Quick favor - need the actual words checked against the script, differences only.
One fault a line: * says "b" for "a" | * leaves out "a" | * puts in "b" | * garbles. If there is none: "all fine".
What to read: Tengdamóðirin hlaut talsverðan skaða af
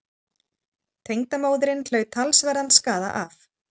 all fine